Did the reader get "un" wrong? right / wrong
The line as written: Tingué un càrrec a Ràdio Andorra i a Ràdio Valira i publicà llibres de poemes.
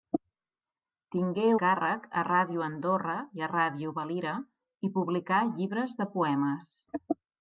wrong